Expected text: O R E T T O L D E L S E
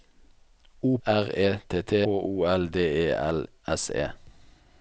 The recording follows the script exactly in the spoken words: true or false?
true